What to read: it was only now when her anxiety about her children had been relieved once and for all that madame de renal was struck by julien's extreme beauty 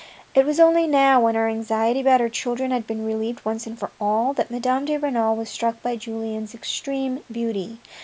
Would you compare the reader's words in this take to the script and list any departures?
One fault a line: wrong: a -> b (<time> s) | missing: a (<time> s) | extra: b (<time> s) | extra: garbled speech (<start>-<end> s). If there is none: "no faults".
no faults